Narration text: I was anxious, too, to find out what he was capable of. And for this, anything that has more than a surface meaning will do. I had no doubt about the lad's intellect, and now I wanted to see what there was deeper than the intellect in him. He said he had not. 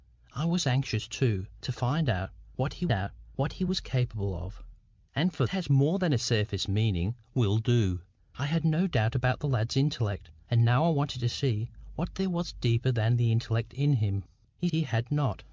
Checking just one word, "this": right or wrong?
wrong